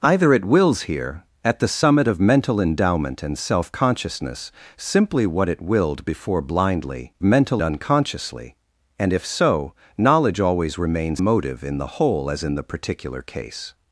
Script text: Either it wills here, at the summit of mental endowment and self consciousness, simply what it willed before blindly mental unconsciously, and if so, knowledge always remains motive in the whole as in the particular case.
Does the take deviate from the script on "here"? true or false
false